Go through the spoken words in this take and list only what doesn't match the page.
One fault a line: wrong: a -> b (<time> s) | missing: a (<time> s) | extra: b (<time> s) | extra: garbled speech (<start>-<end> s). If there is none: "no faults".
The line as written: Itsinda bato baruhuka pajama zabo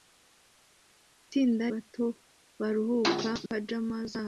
no faults